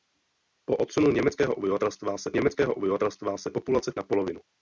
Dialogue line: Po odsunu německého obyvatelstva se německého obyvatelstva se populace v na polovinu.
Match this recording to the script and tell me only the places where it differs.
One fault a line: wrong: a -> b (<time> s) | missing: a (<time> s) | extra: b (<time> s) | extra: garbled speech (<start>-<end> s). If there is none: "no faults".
no faults